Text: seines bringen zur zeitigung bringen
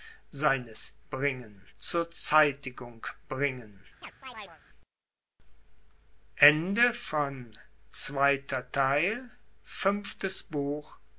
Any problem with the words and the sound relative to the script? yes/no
yes